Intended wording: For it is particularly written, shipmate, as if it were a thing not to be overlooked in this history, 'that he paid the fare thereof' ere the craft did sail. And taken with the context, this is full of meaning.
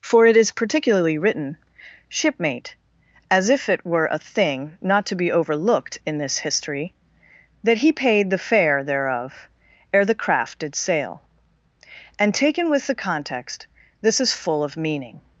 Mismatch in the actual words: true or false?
false